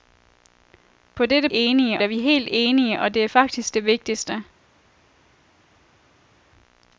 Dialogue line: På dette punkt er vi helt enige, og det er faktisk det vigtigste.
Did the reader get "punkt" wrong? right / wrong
wrong